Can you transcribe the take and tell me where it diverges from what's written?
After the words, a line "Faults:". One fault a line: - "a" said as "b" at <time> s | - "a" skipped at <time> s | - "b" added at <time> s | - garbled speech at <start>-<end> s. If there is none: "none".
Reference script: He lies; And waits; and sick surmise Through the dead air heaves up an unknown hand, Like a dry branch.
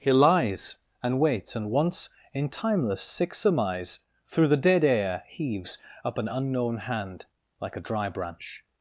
He lies; And waits; and once in timeless sick surmise Through the dead air heaves up an unknown hand, Like a dry branch.
Faults:
- "once in timeless" added at 1.7 s